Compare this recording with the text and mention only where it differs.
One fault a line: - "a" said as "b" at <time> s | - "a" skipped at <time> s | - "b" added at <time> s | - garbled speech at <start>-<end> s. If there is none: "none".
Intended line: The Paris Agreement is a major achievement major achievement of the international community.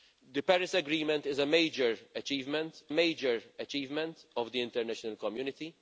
none